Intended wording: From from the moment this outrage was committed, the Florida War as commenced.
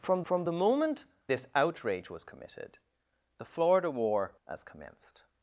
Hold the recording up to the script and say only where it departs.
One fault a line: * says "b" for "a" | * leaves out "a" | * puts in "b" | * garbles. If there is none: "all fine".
all fine